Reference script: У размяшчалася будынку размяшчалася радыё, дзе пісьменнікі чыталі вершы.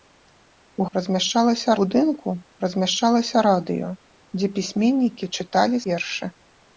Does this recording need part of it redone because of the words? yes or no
no